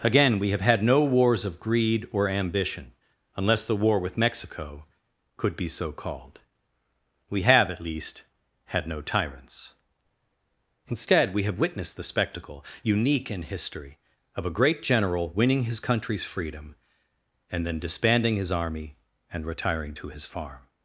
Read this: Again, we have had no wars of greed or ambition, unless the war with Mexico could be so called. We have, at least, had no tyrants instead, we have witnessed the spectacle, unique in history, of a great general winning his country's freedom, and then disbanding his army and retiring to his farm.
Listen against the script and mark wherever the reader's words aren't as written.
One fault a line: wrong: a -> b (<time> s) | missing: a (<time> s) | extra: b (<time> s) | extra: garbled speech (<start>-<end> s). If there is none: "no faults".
no faults